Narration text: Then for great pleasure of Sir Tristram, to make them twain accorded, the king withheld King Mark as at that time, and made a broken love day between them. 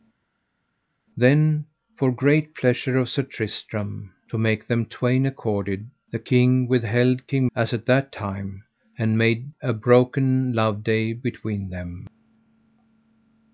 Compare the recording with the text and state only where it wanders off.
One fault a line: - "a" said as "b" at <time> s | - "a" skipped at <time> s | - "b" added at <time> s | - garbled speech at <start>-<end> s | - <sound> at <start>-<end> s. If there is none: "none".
- "Mark" skipped at 7.5 s